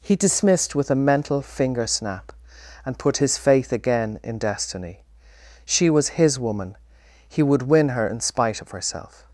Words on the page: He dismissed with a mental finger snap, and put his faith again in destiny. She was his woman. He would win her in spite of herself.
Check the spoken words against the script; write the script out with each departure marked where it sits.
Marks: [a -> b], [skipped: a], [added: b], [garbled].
He dismissed with a mental finger snap, and put his faith again in destiny. She was his woman. He would win her in spite of herself.